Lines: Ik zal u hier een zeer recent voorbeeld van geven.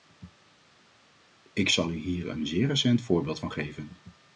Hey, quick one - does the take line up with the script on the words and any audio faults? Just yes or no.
yes